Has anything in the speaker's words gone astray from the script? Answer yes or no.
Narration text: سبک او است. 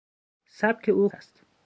no